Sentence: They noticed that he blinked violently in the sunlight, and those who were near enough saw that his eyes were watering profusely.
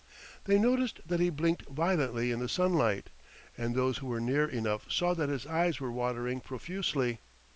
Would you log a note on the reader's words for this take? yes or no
no